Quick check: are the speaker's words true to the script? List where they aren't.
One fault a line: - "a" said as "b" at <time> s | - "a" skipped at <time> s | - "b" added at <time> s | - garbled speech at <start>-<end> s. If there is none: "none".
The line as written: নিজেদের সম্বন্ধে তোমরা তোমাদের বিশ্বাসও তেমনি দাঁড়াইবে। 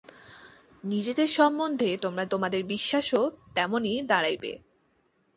none